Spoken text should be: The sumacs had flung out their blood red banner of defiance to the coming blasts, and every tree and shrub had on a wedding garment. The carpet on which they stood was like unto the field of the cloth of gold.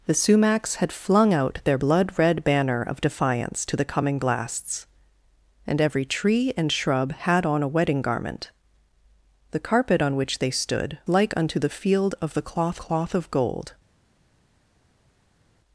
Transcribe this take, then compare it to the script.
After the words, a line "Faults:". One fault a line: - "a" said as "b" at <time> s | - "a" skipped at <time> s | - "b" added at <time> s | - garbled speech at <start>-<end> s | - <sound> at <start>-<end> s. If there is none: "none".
The sumacs had flung out their blood red banner of defiance to the coming blasts, and every tree and shrub had on a wedding garment. The carpet on which they stood like unto the field of the cloth cloth of gold.
Faults:
- "was" skipped at 11.0 s
- "cloth" added at 12.8 s